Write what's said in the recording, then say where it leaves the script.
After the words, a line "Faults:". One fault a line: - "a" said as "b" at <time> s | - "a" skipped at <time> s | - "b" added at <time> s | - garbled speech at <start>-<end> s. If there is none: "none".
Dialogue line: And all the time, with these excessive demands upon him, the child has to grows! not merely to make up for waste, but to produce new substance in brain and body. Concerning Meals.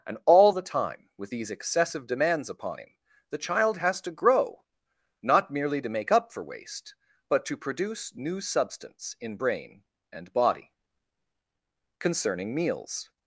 And all the time, with these excessive demands upon him, the child has to grow! not merely to make up for waste, but to produce new substance in brain and body. Concerning Meals.
Faults:
- "grows" said as "grow" at 4.1 s